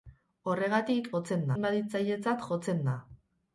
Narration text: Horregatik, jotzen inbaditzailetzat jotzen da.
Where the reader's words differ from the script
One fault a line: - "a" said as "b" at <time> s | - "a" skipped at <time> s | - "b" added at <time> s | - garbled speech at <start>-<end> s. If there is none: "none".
none